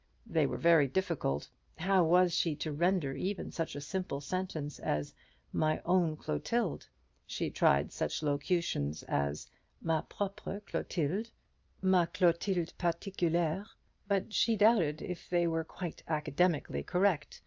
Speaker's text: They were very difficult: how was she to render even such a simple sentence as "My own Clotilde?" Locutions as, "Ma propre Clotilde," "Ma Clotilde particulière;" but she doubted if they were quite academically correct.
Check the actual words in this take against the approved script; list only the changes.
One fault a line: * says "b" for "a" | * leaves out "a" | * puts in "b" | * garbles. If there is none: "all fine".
* puts in "She tried such"